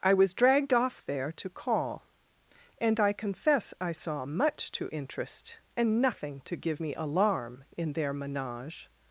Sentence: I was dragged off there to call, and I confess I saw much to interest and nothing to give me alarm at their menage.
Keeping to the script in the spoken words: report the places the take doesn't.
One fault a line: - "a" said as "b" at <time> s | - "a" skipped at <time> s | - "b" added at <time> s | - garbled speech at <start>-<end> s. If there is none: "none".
- "at" said as "in" at 7.8 s